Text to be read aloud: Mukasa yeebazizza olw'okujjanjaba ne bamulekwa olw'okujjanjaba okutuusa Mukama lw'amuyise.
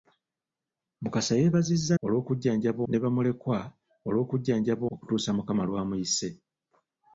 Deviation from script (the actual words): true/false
false